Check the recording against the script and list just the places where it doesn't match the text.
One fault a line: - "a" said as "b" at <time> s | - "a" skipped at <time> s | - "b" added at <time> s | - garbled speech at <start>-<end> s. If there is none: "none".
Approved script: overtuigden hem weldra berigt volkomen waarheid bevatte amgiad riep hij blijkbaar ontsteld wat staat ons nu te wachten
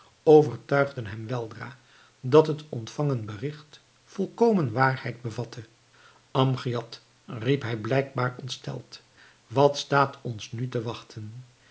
- "dat het ontvangen" added at 2.2 s